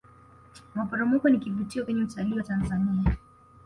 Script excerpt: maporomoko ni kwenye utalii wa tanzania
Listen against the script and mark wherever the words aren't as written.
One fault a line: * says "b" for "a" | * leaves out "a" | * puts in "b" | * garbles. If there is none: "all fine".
* puts in "kivutio"